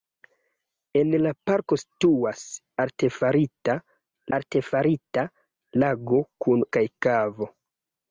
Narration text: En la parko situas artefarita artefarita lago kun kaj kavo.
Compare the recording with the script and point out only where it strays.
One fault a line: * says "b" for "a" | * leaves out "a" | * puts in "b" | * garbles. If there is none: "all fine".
all fine